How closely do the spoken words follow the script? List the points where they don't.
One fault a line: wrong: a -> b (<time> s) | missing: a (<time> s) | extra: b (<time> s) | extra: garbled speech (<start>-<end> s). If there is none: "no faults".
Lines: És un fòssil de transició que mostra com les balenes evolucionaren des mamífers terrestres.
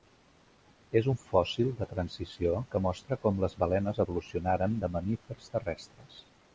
wrong: des -> de (4.8 s)